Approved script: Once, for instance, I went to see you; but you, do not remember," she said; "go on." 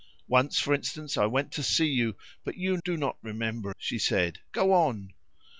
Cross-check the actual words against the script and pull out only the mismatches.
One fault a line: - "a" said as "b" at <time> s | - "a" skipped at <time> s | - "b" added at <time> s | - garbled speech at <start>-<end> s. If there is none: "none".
none